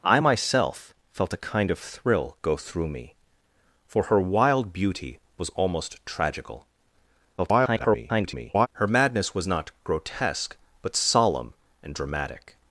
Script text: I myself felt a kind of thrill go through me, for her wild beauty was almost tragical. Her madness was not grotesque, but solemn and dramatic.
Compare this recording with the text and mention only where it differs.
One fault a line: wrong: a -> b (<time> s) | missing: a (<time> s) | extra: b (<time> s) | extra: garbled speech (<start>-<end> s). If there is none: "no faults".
extra: garbled speech (7.4-8.7 s)